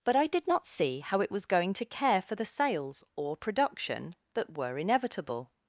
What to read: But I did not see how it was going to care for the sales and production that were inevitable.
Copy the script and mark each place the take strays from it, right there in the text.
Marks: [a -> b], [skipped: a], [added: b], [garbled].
But I did not see how it was going to care for the sales [and -> or] production that were inevitable.